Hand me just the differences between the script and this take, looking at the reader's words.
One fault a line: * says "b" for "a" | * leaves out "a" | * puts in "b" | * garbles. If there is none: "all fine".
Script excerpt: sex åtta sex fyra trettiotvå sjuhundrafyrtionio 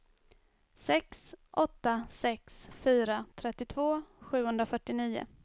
all fine